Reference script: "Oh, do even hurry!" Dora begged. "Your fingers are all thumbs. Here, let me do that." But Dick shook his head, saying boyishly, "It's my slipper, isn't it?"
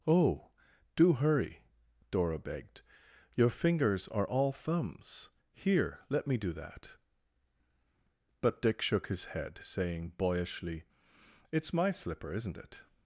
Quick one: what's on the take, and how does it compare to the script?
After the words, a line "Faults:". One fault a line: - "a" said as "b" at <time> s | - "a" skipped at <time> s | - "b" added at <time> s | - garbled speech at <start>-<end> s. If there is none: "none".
"Oh, do hurry!" Dora begged. "Your fingers are all thumbs. Here, let me do that." But Dick shook his head, saying boyishly, "It's my slipper, isn't it?"
Faults:
- "even" skipped at 1.1 s